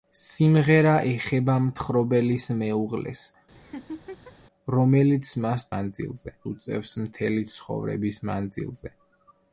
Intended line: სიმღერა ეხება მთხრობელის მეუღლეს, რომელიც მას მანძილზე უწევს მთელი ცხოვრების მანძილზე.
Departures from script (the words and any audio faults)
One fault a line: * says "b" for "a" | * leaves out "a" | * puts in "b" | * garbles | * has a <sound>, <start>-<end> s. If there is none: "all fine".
* has a laugh, 3.5-4.3 s